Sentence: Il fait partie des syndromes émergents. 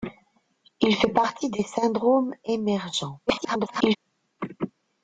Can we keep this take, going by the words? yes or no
no